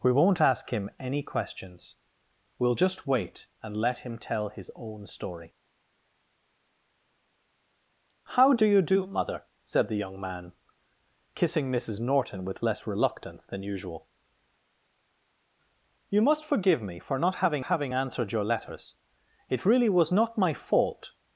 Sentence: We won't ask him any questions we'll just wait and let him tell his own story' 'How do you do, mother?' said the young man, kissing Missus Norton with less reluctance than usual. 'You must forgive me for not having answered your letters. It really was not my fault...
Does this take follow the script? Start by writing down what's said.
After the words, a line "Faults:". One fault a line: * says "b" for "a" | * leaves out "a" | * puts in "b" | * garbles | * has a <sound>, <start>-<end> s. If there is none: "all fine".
We won't ask him any questions we'll just wait and let him tell his own story' 'How do you do, mother?' said the young man, kissing Missus Norton with less reluctance than usual. 'You must forgive me for not having having answered your letters. It really was not my fault...
Faults:
* puts in "having"